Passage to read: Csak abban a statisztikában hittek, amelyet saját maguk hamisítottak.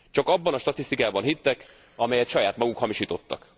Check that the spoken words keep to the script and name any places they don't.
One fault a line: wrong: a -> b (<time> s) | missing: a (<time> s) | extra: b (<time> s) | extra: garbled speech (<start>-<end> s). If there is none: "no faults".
no faults